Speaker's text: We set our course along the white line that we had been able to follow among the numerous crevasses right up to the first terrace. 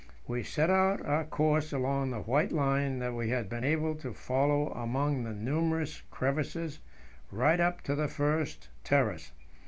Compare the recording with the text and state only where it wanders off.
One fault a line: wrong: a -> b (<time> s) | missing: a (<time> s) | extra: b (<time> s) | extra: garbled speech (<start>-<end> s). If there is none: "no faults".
no faults